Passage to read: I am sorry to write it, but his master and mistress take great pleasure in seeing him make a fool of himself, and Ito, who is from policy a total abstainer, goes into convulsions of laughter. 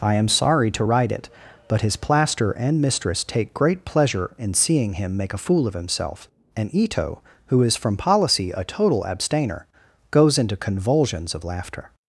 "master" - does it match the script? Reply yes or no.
no